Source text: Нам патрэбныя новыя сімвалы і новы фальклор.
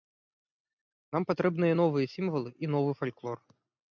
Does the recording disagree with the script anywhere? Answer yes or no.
no